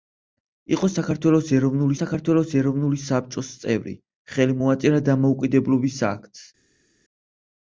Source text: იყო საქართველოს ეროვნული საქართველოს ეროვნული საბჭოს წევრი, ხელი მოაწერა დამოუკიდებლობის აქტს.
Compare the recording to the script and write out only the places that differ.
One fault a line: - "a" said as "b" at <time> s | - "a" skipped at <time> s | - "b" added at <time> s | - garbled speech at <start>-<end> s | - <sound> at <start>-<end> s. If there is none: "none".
none